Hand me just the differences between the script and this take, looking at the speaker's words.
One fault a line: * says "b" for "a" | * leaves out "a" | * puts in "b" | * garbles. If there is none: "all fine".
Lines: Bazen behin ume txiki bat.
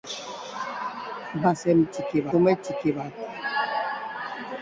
* says "txiki" for "behin"